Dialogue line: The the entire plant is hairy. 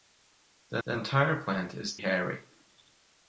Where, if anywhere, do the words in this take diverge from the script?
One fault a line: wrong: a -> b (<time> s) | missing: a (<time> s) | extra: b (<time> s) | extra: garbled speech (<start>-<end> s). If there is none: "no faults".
no faults